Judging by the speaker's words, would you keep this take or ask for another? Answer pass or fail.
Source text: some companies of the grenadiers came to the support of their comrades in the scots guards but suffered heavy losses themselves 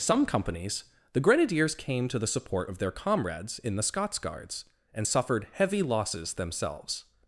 fail